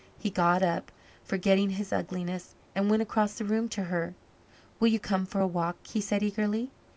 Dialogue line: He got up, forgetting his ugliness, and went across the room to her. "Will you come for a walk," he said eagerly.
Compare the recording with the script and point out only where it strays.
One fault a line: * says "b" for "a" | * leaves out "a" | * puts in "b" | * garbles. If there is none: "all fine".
all fine